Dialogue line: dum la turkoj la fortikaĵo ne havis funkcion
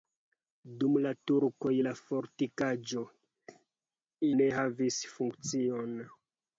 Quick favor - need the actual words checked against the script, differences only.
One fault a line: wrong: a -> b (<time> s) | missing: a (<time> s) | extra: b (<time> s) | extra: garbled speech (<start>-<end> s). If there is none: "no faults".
no faults